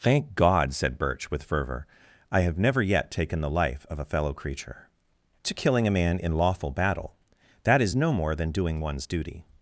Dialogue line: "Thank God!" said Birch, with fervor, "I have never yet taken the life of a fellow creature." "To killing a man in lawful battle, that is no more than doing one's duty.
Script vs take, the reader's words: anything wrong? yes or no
no